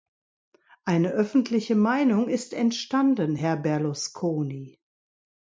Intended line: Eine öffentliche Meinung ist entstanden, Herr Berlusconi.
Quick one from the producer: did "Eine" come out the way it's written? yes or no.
yes